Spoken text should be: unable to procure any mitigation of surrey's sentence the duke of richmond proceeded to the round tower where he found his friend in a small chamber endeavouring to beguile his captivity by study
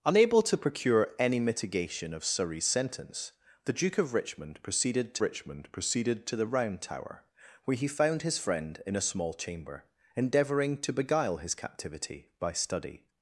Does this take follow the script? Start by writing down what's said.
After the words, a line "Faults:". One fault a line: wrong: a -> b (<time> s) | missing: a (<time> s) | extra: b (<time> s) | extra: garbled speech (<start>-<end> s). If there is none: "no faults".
unable to procure any mitigation of surrey's sentence the duke of richmond proceeded to richmond proceeded to the round tower where he found his friend in a small chamber endeavouring to beguile his captivity by study
Faults:
extra: richmond proceeded to (5.2 s)